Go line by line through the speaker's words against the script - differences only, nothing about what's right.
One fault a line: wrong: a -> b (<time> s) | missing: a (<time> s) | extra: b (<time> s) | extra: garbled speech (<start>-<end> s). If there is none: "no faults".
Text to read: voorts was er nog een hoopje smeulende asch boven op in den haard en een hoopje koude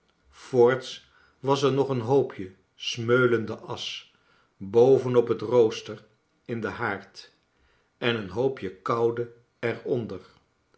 extra: het rooster (5.3 s)